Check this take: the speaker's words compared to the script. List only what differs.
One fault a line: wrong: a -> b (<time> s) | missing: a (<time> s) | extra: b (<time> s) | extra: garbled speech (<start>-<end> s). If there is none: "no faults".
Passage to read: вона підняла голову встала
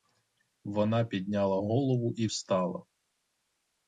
extra: і (2.2 s)